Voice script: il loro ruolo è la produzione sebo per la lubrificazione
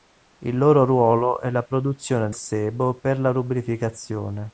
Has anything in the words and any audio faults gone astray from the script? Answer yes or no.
no